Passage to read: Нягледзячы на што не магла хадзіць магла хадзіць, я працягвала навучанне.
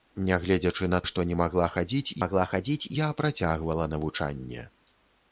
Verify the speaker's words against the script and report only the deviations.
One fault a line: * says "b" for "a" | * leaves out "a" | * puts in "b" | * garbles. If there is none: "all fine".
all fine